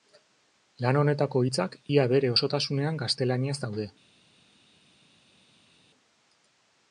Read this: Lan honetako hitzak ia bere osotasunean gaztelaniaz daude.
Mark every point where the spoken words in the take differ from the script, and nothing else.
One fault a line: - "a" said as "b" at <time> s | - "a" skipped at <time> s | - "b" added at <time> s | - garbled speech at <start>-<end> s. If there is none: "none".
none